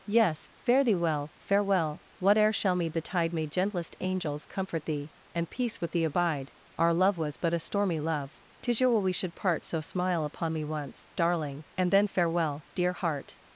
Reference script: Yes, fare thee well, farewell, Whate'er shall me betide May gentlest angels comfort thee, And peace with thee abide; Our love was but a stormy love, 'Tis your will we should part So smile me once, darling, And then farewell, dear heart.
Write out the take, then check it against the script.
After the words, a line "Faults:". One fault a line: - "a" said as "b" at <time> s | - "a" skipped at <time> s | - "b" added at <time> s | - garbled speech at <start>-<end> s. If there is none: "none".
Yes, fare thee well, farewell, Whate'er shall me betide May gentlest angels comfort thee, And peace with thee abide; Our love was but a stormy love, 'Tis your will we should part So smile upon me once, darling, And then farewell, dear heart.
Faults:
- "upon" added at 10.2 s